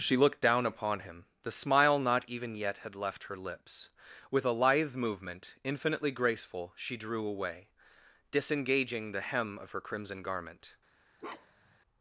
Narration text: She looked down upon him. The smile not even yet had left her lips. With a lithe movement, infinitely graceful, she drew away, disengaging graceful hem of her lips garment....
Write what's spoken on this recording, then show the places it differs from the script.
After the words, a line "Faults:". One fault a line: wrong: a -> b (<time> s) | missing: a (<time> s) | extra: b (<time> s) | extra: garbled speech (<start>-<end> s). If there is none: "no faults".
She looked down upon him. The smile not even yet had left her lips. With a lithe movement, infinitely graceful, she drew away, disengaging the hem of her crimson garment....
Faults:
wrong: graceful -> the (9.1 s)
wrong: lips -> crimson (9.8 s)